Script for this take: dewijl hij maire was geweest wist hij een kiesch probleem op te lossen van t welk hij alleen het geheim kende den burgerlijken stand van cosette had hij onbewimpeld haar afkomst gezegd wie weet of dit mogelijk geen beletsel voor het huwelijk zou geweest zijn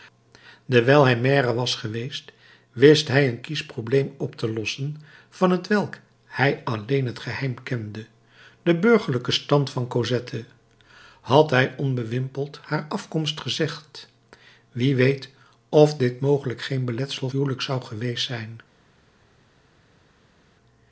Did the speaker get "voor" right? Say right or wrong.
wrong